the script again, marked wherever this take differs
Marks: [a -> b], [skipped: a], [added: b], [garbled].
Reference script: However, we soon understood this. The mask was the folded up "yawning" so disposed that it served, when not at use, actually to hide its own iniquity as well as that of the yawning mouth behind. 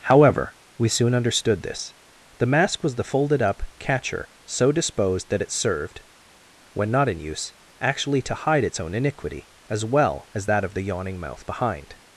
However, we soon understood this. The mask was the folded up ["yawning" -> catcher] so disposed that it served, when not [at -> in] use, actually to hide its own iniquity as well as that of the yawning mouth behind.